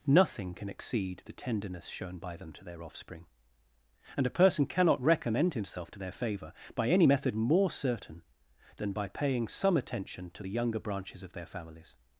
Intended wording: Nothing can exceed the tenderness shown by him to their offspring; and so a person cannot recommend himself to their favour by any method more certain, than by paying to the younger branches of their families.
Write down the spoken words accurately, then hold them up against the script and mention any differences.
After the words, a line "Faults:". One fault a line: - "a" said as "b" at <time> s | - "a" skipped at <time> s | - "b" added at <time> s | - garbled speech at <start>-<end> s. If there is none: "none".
Nothing can exceed the tenderness shown by them to their offspring; and a person cannot recommend himself to their favour by any method more certain, than by paying some attention to the younger branches of their families.
Faults:
- "him" said as "them" at 2.4 s
- "so" skipped at 4.2 s
- "some attention" added at 9.5 s